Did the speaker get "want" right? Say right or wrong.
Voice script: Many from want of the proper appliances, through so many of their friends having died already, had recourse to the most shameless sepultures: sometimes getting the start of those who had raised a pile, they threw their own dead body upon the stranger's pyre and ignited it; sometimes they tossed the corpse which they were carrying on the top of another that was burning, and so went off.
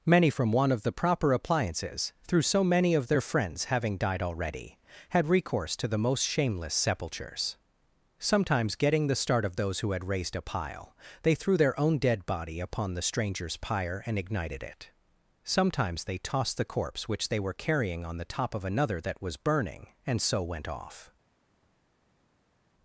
wrong